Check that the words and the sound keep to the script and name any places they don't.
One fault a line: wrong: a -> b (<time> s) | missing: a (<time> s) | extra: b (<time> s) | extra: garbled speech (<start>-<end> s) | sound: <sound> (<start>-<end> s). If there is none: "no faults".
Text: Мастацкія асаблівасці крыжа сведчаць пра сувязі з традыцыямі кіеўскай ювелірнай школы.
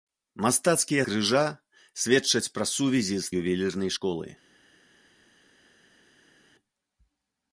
missing: асаблівасці (1.0 s)
missing: традыцыямі кіеўскай (3.3 s)